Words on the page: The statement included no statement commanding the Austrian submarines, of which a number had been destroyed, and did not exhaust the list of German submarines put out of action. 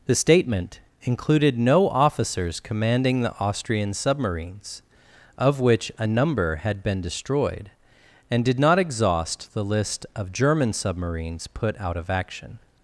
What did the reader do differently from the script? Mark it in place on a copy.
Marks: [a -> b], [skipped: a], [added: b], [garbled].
The statement included no [statement -> officers] commanding the Austrian submarines, of which a number had been destroyed, and did not exhaust the list of German submarines put out of action.